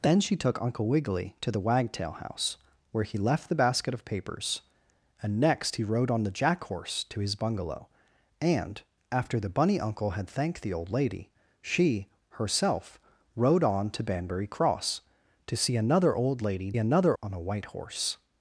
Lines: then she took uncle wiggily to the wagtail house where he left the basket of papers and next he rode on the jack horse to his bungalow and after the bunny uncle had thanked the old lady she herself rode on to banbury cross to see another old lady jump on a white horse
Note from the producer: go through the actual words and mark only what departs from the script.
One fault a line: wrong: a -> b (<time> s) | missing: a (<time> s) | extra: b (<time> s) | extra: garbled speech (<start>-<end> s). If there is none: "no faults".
wrong: jump -> another (16.8 s)